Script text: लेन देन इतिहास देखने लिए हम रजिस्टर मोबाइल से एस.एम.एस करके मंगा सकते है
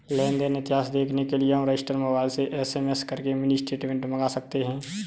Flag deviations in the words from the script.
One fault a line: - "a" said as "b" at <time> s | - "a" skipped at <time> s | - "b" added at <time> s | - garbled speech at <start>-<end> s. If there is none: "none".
- "के" added at 1.2 s
- "मिनी स्टेटमेंट" added at 3.3 s